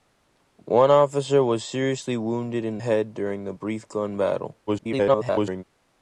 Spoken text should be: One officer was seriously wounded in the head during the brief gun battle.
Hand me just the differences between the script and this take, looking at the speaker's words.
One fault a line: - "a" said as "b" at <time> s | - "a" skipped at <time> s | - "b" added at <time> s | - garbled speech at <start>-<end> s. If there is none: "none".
- "the" skipped at 2.8 s
- garbled speech at 4.7-5.6 s